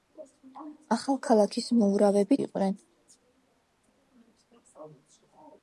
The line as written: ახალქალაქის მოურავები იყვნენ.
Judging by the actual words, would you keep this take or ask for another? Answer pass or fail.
pass